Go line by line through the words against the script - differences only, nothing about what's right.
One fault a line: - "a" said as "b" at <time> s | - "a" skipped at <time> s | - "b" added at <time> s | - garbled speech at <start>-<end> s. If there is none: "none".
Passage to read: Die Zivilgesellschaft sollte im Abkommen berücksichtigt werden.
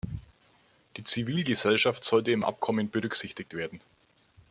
none